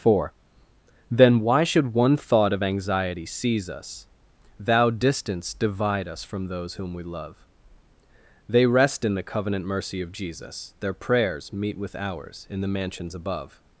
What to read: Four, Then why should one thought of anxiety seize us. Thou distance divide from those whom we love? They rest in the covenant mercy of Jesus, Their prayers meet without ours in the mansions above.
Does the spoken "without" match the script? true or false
false